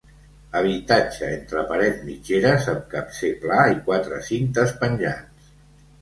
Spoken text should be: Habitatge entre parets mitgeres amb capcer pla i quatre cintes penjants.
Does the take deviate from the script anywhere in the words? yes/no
no